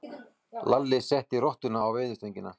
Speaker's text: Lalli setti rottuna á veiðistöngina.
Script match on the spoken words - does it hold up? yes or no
yes